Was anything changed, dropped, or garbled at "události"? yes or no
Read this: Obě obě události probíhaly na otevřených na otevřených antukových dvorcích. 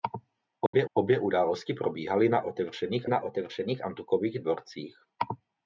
no